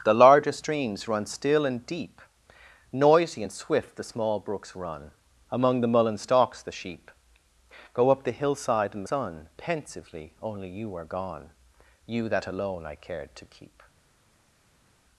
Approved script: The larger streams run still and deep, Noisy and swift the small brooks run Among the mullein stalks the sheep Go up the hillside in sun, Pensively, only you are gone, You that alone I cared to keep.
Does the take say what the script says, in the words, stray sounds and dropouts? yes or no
yes